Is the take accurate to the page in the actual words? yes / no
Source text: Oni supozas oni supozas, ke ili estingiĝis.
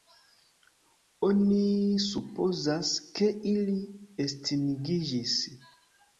no